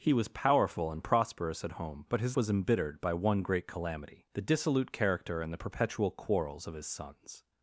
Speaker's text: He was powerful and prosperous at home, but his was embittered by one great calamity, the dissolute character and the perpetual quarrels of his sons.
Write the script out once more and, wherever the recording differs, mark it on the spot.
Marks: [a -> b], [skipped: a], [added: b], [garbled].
He was powerful and prosperous at home, but his was embittered by one great calamity, the dissolute character and the perpetual quarrels of his sons.